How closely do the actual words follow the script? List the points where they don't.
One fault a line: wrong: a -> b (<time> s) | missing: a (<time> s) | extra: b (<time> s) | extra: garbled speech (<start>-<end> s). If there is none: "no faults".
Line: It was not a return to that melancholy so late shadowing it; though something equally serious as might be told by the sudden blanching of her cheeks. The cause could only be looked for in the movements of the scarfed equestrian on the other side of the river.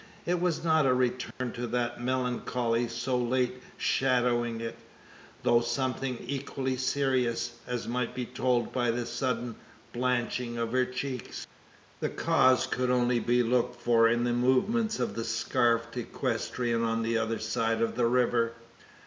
no faults